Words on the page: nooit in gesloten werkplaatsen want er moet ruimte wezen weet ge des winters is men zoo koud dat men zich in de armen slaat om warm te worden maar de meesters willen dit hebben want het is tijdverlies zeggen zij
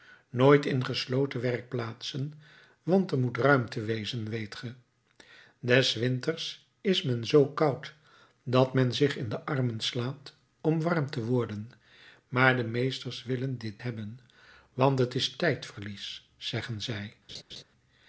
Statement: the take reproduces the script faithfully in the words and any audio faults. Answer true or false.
false